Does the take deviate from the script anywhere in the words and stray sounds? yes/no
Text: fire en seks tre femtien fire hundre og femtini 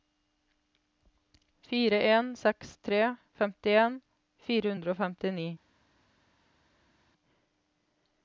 no